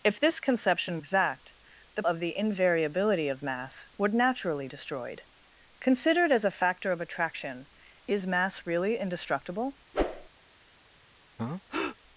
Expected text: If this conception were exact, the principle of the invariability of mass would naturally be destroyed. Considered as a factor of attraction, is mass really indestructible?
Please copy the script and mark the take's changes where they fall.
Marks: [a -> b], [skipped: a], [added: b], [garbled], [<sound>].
If this conception [skipped: were] exact, the [skipped: principle] of the invariability of mass would naturally [skipped: be] destroyed. Considered as a factor of attraction, is mass really indestructible? [whoosh] [breath]